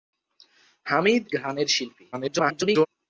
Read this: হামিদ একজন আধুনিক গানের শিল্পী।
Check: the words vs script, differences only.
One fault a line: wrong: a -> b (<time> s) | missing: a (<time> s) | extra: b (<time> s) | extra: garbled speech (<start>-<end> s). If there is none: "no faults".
missing: একজন আধুনিক (1.2 s)
extra: garbled speech (2.1-2.9 s)